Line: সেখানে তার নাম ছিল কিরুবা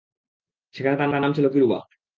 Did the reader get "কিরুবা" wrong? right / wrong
right